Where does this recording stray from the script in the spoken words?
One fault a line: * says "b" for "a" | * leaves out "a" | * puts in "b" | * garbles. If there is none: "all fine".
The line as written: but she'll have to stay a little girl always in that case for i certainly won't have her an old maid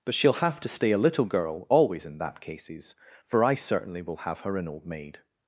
* says "cases" for "case"
* says "will" for "won't"